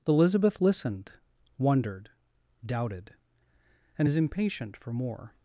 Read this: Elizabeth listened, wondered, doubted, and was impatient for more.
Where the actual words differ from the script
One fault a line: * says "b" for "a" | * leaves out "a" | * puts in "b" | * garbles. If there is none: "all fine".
* says "is" for "was"